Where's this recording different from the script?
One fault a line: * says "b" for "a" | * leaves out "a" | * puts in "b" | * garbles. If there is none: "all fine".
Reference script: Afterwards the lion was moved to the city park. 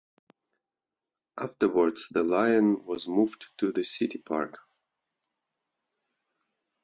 all fine